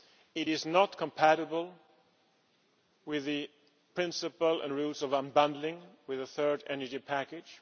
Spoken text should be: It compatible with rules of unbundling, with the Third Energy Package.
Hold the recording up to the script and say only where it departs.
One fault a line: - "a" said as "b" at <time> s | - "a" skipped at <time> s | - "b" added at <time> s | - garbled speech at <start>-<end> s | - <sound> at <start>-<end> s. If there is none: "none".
- "is not" added at 0.5 s
- "the principle and" added at 3.2 s